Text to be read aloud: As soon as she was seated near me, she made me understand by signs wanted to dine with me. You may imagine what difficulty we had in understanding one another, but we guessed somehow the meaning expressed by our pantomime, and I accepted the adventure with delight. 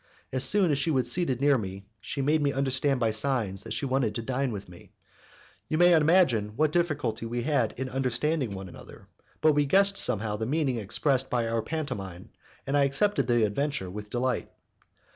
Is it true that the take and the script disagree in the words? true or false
true